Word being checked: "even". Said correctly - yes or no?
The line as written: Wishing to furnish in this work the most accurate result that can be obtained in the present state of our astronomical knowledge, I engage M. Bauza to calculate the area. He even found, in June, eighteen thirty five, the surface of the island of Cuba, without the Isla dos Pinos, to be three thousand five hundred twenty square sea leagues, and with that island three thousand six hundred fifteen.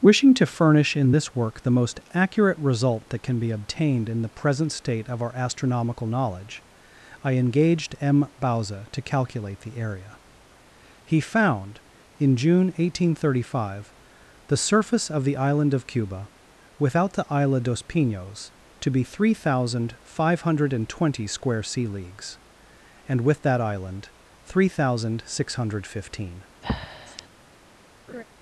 no